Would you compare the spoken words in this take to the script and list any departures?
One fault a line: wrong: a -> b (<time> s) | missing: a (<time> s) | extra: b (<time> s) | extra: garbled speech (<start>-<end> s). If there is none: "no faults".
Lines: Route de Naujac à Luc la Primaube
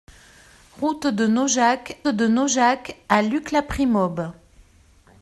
extra: de Naujac (2.1 s)